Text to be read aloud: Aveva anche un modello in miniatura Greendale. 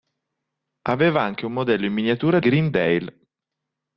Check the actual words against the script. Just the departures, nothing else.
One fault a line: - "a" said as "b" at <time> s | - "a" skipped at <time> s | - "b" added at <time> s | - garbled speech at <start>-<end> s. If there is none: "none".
none